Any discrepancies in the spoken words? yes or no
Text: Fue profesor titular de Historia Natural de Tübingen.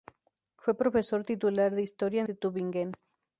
yes